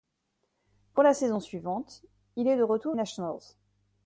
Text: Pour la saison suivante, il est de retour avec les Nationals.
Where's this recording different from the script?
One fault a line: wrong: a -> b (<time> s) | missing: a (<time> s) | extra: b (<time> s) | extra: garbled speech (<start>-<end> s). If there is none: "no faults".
missing: avec les (3.0 s)